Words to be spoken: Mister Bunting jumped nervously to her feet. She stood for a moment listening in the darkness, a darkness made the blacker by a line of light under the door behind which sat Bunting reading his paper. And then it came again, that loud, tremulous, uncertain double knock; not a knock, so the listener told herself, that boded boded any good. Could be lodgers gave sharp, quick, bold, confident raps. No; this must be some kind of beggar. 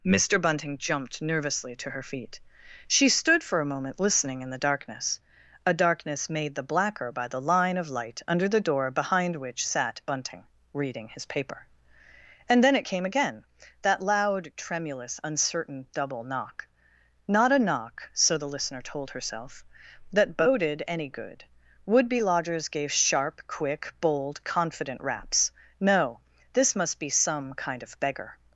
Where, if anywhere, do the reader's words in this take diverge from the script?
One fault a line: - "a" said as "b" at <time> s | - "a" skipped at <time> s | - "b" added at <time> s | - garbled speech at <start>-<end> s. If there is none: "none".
- "a" said as "the" at 7.3 s
- "boded" skipped at 20.8 s
- "Could" said as "Would" at 21.9 s